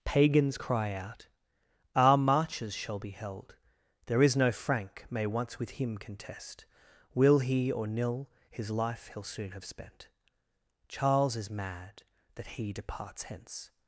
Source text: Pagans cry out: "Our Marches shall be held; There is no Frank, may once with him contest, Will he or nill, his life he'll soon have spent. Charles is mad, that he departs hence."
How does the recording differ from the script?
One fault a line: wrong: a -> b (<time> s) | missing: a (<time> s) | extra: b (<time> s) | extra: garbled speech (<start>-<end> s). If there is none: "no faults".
no faults